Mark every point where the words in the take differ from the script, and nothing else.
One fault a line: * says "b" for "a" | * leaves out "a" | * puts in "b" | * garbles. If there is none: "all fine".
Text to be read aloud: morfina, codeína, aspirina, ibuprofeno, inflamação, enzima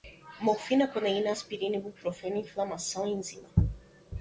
all fine